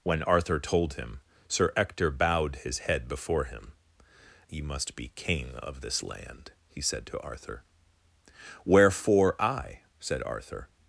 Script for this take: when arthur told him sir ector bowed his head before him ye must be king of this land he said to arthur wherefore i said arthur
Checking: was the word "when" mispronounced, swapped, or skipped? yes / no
no